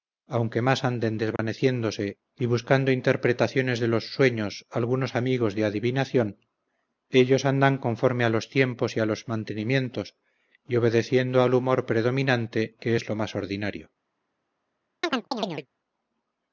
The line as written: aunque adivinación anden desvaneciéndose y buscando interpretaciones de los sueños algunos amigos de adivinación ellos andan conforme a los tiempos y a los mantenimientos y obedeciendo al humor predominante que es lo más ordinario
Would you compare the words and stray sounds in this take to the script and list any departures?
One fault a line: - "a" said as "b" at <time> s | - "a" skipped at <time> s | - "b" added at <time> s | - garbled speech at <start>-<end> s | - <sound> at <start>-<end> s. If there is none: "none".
- "adivinación" said as "más" at 0.6 s
- dropout at 1.4-1.4 s
- chirp at 15.0-15.7 s